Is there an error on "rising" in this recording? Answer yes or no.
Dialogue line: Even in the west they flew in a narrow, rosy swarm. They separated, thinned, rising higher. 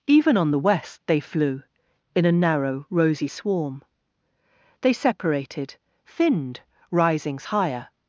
yes